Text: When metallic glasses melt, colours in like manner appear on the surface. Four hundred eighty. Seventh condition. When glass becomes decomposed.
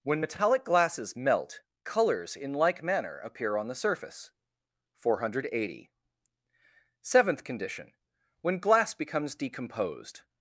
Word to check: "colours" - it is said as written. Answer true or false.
true